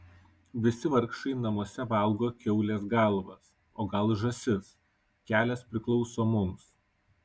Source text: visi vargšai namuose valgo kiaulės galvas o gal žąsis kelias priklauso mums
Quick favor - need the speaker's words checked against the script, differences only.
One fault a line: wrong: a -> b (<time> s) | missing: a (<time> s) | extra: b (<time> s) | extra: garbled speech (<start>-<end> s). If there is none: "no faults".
no faults